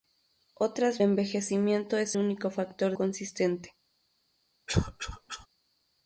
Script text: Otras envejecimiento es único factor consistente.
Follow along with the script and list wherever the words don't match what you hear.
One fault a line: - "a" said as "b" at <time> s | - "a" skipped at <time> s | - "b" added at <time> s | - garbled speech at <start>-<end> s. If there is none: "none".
none